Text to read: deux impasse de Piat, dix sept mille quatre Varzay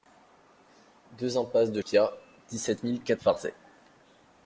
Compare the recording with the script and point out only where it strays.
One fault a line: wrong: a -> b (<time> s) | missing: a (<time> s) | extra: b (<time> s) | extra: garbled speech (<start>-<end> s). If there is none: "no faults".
no faults